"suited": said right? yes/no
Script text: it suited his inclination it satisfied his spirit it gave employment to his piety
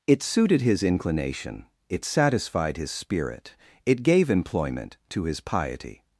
yes